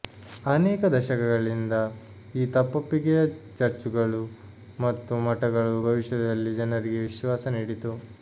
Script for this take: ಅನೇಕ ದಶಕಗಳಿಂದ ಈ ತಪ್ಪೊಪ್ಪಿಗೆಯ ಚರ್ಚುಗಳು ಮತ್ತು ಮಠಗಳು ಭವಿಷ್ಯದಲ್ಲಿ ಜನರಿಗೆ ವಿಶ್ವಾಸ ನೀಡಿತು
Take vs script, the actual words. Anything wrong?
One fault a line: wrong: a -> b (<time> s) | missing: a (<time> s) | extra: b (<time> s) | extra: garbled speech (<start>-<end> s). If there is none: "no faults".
no faults